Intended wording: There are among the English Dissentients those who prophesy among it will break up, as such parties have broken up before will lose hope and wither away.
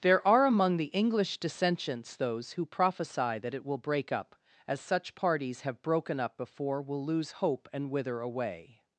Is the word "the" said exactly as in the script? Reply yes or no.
yes